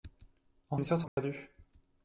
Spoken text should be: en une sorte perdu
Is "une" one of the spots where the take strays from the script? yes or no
no